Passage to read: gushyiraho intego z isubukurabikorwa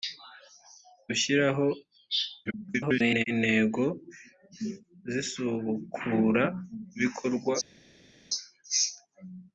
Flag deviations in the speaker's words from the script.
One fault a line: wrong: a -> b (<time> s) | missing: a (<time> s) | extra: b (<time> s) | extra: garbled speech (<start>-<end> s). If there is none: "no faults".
extra: garbled speech (2.5-3.2 s)